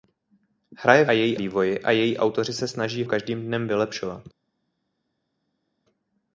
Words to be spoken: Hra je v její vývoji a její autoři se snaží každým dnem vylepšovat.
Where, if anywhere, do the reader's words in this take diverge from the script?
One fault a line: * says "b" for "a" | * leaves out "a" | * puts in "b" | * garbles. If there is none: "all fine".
all fine